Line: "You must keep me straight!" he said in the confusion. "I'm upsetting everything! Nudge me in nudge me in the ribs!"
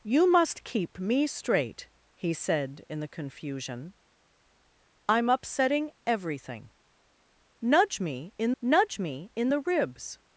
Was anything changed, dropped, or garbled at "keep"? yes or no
no